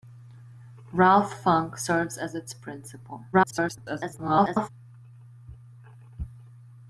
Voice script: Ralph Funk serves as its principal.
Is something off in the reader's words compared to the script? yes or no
yes